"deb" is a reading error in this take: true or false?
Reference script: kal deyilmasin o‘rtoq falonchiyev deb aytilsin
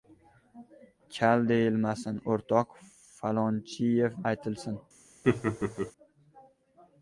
true